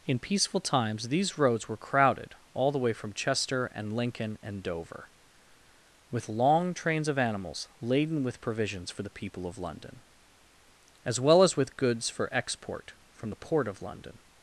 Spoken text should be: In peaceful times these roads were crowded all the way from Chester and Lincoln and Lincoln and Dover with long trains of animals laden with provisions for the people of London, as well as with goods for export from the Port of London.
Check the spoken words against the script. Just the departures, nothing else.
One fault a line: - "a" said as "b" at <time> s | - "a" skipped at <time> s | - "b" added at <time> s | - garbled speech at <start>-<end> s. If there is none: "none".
- "Lincoln and" skipped at 4.6 s